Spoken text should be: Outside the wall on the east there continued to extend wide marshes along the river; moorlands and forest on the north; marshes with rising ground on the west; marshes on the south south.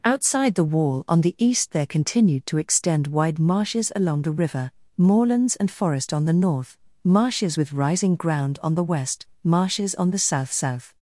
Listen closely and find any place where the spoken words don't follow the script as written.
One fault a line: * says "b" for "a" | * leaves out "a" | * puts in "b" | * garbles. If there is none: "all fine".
all fine